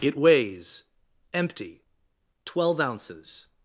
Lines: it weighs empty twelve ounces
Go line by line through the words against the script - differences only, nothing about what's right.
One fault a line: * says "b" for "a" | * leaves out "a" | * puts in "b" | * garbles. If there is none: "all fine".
all fine